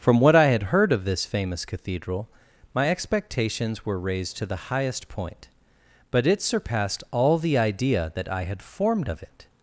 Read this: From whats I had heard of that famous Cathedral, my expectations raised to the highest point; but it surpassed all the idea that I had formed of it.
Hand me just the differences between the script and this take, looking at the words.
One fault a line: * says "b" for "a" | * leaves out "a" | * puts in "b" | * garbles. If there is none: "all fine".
* says "what" for "whats"
* says "this" for "that"
* puts in "were"